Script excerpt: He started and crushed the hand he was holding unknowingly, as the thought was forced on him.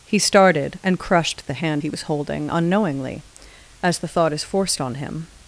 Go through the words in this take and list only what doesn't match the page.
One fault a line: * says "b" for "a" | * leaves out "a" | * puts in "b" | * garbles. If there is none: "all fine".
* says "is" for "was"